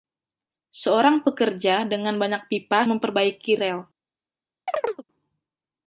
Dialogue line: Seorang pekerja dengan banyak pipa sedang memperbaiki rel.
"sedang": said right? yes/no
no